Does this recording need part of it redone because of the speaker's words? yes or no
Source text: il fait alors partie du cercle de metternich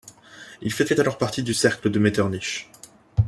yes